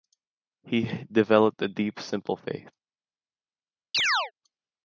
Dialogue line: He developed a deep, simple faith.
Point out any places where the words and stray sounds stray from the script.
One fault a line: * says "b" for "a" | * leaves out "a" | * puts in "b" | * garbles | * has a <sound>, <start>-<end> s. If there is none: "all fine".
* has a chirp, 3.9-4.3 s